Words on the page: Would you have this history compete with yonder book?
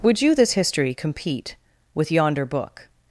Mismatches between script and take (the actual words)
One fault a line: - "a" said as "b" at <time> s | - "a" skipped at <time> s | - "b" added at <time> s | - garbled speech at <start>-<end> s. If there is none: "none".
- "have" skipped at 0.3 s